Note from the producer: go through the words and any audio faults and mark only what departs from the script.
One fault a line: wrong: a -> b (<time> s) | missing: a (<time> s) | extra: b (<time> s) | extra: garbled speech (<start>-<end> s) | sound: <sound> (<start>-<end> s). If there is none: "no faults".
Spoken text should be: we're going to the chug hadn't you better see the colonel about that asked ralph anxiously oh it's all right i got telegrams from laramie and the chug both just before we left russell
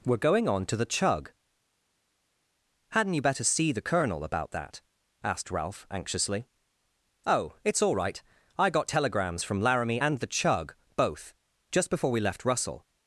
extra: on (0.5 s)